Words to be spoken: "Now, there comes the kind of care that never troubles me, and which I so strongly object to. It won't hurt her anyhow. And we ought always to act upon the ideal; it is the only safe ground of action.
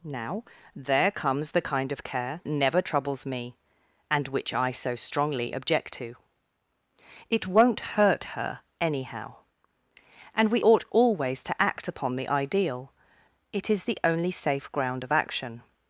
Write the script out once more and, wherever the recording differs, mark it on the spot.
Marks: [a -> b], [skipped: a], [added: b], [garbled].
"Now, there comes the kind of care [skipped: that] never troubles me, and which I so strongly object to. It won't hurt her anyhow. And we ought always to act upon the ideal; it is the only safe ground of action.